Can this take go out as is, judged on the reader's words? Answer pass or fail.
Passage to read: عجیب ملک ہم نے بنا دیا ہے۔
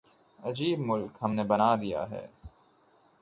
pass